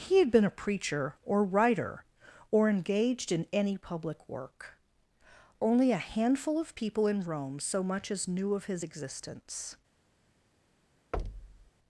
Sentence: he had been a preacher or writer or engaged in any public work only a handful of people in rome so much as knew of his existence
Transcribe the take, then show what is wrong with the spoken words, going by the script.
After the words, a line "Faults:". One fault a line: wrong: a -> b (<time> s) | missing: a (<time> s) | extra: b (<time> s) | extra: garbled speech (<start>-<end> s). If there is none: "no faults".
he had been a preacher or writer or engaged in any public work only a handful of people in rome so much as knew of his existence
Faults:
no faults